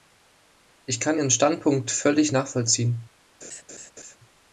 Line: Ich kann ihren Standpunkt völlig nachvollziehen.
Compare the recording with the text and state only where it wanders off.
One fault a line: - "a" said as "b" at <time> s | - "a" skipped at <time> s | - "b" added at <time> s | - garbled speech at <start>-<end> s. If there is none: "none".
none